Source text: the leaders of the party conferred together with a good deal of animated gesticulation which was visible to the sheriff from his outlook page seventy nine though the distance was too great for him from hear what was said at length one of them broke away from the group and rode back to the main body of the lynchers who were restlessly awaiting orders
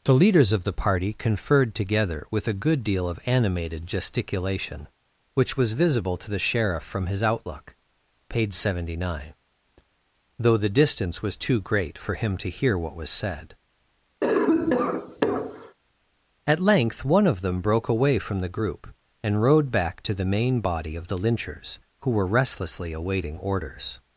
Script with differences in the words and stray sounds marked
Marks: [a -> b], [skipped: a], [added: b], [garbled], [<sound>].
the leaders of the party conferred together with a good deal of animated gesticulation which was visible to the sheriff from his outlook page seventy nine though the distance was too great for him [from -> to] hear what was said [cough] at length one of them broke away from the group and rode back to the main body of the lynchers who were restlessly awaiting orders